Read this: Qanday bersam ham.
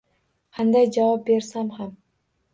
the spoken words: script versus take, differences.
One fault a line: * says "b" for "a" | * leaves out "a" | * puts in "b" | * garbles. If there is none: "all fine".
* puts in "javob"